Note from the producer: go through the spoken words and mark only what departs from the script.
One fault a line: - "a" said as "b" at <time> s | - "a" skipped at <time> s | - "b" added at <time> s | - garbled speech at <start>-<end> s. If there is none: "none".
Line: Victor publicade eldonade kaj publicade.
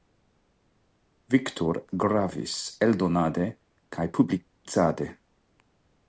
- "publicade" said as "gravis" at 2.0 s